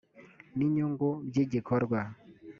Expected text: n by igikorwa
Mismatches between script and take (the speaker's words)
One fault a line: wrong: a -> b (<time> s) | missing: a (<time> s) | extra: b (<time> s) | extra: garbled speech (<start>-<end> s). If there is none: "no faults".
extra: inyungu (0.7 s)